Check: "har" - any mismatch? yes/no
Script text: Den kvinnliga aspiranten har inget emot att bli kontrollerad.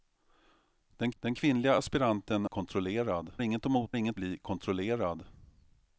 yes